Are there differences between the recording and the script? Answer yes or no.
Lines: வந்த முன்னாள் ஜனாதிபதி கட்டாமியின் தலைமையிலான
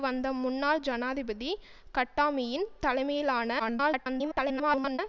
yes